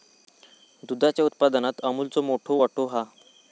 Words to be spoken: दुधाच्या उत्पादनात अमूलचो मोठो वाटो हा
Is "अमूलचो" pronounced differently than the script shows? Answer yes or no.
no